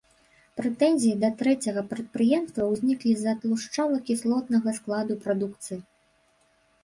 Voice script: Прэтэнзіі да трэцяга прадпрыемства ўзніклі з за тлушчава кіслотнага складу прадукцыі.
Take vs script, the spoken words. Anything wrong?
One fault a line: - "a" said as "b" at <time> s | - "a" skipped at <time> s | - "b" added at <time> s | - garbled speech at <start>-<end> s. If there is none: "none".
none